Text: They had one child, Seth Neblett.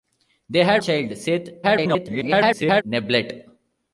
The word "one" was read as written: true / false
false